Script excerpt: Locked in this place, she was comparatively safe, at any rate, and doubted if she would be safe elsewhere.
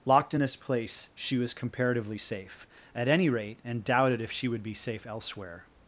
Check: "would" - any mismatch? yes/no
no